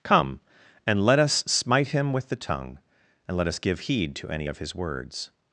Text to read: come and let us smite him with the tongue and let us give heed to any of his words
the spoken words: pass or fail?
pass